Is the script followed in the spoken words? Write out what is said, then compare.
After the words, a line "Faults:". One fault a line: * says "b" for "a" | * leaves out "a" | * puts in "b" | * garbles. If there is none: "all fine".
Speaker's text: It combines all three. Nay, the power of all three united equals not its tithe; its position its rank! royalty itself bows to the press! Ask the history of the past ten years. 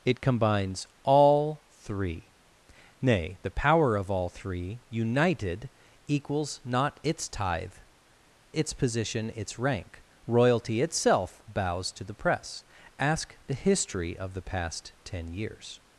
It combines all three. Nay, the power of all three united equals not its tithe; its position its rank! royalty itself bows to the press! Ask the history of the past ten years.
Faults:
all fine